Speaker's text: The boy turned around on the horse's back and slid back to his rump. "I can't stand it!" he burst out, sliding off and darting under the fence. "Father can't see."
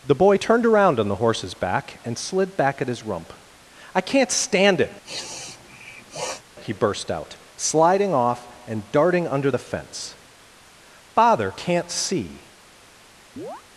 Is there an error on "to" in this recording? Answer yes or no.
yes